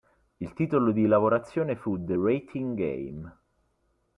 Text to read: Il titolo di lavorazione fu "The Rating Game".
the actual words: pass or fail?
pass